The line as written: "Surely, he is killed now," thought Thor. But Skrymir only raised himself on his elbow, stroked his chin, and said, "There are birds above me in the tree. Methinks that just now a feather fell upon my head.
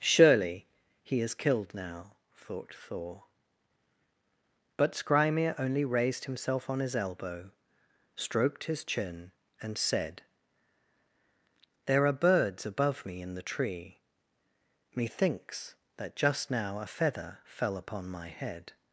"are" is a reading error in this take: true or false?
false